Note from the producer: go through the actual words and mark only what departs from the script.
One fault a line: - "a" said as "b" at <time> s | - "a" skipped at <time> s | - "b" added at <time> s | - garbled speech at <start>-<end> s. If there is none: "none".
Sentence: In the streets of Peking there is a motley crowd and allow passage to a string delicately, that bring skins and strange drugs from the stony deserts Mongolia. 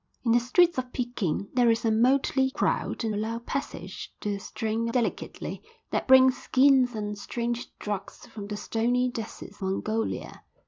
none